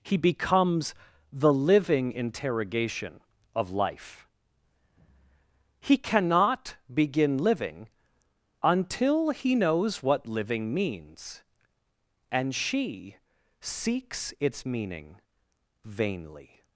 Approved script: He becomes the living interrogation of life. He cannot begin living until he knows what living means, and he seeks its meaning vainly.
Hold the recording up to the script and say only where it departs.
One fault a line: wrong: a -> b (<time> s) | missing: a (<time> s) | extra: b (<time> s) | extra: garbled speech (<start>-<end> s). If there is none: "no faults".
wrong: he -> she (12.5 s)